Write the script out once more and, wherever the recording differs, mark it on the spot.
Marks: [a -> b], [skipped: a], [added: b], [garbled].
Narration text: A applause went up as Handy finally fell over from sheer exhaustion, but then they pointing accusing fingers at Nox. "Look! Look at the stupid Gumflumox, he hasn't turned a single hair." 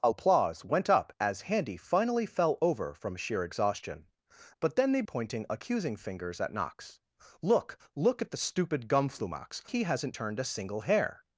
A applause went up as Handy finally fell over from sheer exhaustion, but then they pointing accusing fingers at Nox. "Look! Look at the stupid Gumflumox, he hasn't turned a single hair."